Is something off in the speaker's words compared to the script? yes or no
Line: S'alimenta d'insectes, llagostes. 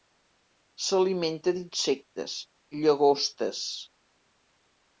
no